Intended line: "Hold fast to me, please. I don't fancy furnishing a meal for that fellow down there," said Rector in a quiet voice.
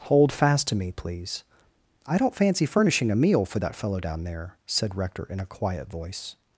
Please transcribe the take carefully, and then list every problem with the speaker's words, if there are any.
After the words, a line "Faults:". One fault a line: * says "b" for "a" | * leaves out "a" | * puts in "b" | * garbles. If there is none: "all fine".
"Hold fast to me, please. I don't fancy furnishing a meal for that fellow down there," said Rector in a quiet voice.
Faults:
all fine